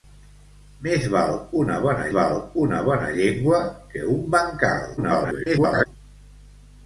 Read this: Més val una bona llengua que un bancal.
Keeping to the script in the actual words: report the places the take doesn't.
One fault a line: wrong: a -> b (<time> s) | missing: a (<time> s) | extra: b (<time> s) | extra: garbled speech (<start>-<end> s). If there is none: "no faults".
extra: val una bona (2.2 s)
extra: garbled speech (5.0-5.9 s)